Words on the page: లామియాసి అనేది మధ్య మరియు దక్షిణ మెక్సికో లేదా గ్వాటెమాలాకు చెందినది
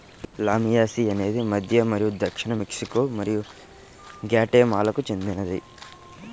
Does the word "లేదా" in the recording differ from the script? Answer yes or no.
yes